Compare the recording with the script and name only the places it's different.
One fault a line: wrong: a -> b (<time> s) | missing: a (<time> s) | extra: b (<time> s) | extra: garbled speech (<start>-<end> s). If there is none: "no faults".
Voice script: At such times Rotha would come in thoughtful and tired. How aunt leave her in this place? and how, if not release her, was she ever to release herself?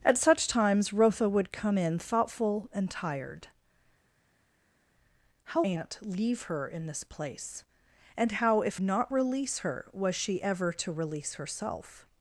no faults